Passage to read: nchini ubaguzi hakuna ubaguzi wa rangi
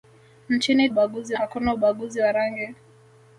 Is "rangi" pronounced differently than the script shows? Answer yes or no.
no